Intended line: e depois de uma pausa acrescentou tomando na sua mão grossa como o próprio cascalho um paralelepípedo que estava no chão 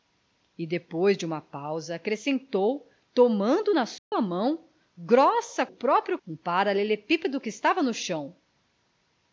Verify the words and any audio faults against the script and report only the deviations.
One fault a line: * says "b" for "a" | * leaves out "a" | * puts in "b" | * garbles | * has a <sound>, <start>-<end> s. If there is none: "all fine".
* has a dropout, 4.0-4.1 s
* leaves out "como"
* leaves out "cascalho"